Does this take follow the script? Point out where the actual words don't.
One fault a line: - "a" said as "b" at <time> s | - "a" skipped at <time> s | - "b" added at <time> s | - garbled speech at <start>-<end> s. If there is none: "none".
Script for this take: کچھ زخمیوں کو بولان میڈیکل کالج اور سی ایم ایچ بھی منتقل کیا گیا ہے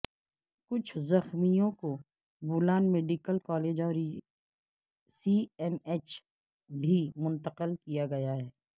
none